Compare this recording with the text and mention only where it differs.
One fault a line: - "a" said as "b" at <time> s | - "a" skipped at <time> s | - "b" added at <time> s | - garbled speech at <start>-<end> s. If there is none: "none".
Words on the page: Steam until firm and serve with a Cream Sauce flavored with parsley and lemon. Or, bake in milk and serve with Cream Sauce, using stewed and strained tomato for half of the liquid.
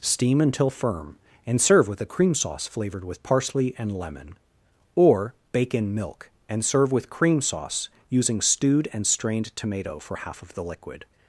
none